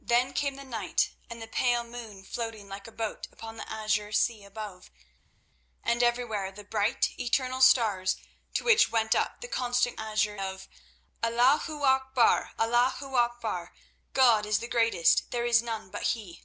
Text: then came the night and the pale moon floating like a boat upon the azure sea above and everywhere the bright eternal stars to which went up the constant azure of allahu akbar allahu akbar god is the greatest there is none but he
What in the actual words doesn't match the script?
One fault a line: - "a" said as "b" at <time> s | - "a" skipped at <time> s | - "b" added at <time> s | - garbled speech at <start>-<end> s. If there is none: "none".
none